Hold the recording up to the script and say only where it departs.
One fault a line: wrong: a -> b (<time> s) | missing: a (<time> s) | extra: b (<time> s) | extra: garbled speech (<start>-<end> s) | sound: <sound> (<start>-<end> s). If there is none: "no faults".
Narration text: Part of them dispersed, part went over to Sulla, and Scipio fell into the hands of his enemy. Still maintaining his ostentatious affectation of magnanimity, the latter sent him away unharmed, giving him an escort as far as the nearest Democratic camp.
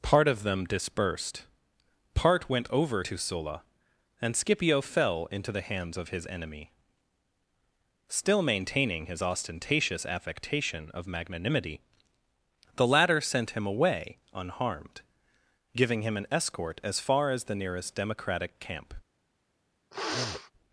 sound: sniff (19.9-20.5 s)